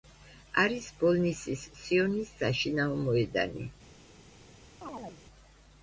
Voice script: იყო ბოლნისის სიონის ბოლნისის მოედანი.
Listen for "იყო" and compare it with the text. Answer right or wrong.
wrong